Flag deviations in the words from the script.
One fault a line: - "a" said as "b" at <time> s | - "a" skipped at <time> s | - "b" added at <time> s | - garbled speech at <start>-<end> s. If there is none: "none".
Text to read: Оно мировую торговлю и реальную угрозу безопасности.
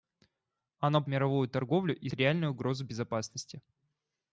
none